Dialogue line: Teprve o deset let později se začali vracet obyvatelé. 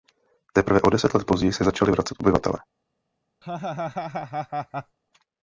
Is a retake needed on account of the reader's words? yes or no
no